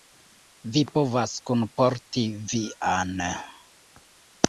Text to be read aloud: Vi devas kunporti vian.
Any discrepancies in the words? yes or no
yes